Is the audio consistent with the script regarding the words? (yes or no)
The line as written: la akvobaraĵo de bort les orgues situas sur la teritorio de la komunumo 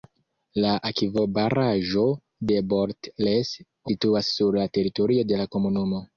no